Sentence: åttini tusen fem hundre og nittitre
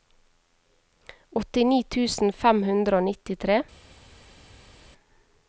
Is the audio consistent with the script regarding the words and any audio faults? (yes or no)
yes